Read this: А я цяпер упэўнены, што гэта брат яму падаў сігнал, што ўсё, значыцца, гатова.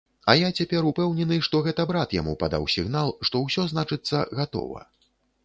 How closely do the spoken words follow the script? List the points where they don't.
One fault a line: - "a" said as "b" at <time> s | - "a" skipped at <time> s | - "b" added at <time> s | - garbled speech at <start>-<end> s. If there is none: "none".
none